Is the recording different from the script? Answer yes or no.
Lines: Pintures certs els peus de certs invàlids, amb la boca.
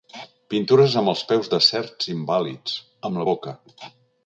yes